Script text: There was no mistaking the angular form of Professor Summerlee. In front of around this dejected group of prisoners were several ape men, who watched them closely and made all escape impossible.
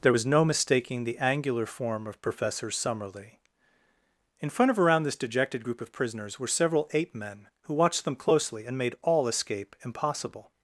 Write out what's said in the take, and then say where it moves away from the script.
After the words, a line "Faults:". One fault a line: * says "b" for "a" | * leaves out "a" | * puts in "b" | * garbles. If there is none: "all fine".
There was no mistaking the angular form of Professor Summerlee. In front of around this dejected group of prisoners were several ape men, who watched them closely and made all escape impossible.
Faults:
all fine